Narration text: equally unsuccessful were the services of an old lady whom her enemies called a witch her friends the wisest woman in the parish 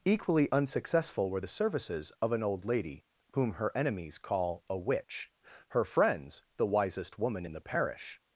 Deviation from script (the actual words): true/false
true